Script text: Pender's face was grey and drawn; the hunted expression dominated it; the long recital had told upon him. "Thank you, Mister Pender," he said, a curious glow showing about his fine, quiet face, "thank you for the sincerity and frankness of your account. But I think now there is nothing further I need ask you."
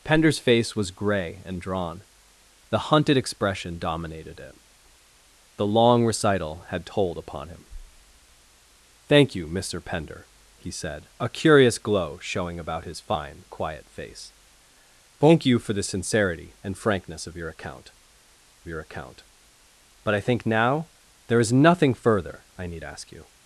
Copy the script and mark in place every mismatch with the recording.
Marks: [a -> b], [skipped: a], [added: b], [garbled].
Pender's face was grey and drawn; the hunted expression dominated it; the long recital had told upon him. "Thank you, Mister Pender," he said, a curious glow showing about his fine, quiet face, "thank you for the sincerity and frankness of your account. [added: your account] But I think now there is nothing further I need ask you."